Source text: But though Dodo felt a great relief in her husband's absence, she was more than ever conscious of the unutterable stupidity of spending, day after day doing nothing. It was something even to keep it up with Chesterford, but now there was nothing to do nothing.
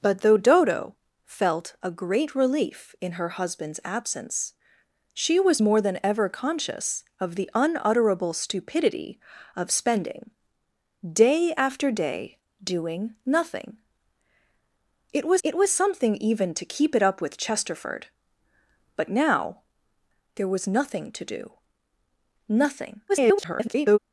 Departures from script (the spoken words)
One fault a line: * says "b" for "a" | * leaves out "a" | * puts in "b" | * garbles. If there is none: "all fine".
* puts in "it was"
* garbles